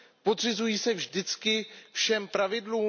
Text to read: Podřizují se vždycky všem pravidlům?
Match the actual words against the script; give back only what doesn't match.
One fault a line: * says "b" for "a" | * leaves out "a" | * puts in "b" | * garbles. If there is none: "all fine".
all fine